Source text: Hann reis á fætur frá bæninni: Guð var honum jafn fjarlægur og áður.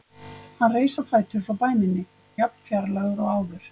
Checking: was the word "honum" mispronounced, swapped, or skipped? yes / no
yes